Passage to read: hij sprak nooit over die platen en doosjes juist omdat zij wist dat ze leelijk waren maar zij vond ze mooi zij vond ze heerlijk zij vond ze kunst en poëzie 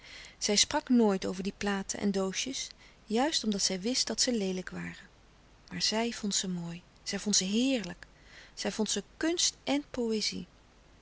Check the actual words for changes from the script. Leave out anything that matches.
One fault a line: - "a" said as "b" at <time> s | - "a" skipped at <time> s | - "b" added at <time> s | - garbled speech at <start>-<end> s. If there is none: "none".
- "hij" said as "zij" at 0.4 s